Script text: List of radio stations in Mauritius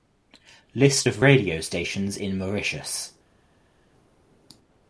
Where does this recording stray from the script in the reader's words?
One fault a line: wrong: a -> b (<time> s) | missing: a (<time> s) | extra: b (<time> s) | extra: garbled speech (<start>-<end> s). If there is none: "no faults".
no faults